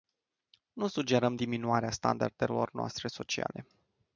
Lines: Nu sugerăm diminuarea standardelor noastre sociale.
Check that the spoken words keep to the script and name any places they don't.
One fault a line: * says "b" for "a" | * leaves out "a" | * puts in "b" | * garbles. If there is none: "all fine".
all fine